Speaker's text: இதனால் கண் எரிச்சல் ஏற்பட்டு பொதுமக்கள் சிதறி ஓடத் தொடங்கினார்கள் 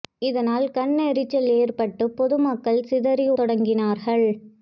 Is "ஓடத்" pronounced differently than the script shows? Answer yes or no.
yes